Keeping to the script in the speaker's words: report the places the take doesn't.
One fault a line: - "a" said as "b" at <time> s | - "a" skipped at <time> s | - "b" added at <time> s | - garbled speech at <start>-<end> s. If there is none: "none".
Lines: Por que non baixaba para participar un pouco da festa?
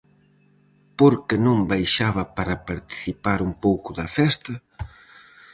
none